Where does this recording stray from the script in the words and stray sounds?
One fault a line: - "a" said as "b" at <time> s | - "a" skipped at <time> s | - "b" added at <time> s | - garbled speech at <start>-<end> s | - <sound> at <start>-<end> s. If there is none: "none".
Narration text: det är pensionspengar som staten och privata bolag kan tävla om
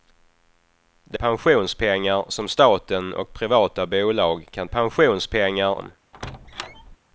- "är" skipped at 1.2 s
- "tävla" said as "pensionspengar" at 4.7 s
- squeak at 6.1-7.0 s